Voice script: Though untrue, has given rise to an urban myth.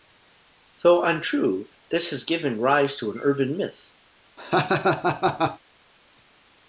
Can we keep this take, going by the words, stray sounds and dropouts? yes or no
no